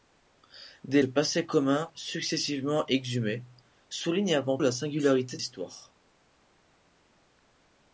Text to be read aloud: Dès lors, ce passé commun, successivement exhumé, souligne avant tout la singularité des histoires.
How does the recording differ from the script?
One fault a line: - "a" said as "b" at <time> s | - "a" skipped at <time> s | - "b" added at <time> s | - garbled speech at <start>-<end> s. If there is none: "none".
- "lors ce" skipped at 1.0 s
- "tout" skipped at 4.6 s
- "des" skipped at 5.4 s